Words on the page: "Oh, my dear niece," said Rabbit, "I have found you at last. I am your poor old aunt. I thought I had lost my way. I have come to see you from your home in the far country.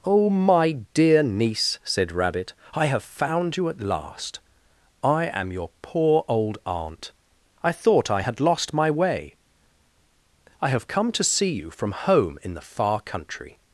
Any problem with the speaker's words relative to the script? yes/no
yes